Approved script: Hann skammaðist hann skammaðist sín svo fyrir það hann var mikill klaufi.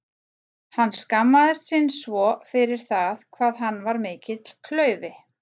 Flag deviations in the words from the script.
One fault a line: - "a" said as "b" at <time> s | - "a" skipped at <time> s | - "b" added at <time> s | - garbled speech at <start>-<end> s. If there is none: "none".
- "hann skammaðist" skipped at 1.7 s
- "hvað" added at 3.4 s